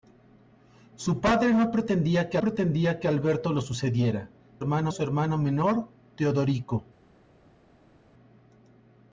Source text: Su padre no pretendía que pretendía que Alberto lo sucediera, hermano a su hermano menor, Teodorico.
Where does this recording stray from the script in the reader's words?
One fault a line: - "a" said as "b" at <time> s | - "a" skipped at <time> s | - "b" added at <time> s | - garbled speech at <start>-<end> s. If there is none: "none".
none